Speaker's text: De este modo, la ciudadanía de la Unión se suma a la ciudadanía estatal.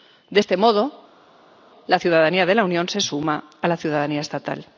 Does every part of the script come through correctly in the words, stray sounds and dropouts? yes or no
yes